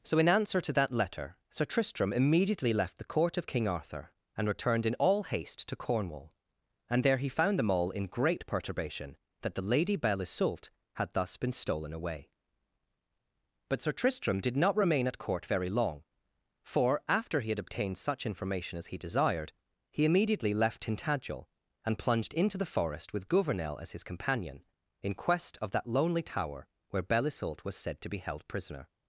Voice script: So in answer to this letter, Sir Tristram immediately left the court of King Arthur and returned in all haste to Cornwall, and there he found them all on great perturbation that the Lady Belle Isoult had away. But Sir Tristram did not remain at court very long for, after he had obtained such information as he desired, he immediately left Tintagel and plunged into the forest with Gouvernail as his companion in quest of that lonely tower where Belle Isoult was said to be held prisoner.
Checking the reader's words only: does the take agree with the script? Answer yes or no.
no